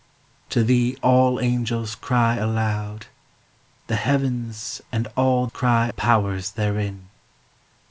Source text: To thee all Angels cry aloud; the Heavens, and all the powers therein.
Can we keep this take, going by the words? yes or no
no